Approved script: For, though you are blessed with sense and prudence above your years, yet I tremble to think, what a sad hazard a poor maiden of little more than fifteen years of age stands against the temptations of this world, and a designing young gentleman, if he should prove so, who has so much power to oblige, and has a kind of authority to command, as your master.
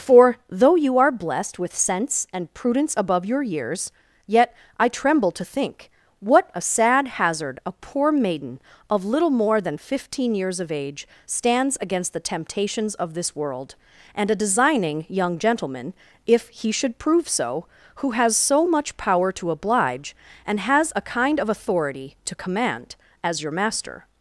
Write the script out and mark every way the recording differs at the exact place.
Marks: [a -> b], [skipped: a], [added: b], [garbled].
For, though you are blessed with sense and prudence above your years, yet I tremble to think, what a sad hazard a poor maiden of little more than fifteen years of age stands against the temptations of this world, and a designing young gentleman, if he should prove so, who has so much power to oblige, and has a kind of authority to command, as your master.